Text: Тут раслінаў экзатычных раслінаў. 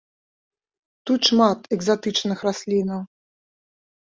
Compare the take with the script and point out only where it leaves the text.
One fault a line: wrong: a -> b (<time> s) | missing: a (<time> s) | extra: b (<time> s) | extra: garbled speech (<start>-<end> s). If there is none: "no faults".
wrong: раслінаў -> шмат (1.3 s)